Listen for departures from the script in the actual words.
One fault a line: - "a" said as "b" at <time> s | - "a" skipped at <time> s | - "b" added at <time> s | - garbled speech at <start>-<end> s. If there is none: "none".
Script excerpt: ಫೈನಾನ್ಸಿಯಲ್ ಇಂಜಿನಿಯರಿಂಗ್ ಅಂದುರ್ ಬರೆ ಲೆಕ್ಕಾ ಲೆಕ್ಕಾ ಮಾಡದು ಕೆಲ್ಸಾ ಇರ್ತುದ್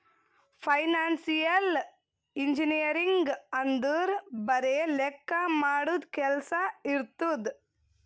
- "ಲೆಕ್ಕಾ" skipped at 5.4 s